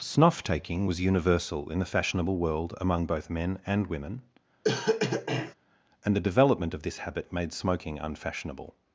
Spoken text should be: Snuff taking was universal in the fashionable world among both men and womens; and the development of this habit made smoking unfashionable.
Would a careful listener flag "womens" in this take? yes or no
yes